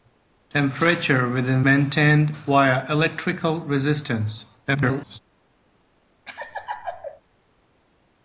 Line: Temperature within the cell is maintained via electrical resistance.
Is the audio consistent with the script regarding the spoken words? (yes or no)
no